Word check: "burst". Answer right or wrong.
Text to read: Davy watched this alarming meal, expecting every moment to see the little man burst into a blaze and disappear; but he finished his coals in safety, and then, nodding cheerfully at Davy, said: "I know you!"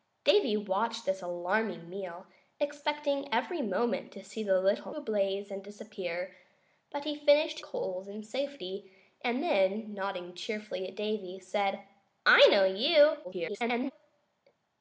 wrong